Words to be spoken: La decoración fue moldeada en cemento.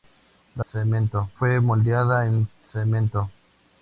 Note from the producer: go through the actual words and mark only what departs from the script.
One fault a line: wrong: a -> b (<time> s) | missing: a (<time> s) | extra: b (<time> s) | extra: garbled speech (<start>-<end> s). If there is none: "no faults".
wrong: decoración -> cemento (0.7 s)